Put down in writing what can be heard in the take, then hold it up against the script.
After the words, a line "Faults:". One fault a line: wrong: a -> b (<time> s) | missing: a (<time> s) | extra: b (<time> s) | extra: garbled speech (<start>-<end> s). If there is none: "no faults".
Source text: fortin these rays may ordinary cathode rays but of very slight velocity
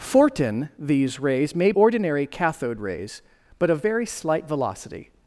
fortin these rays may ordinary cathode rays but of very slight velocity
Faults:
no faults